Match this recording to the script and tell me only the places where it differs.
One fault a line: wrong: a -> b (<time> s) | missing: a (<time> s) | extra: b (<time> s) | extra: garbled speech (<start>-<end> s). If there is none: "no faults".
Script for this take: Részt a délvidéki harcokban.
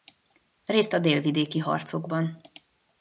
no faults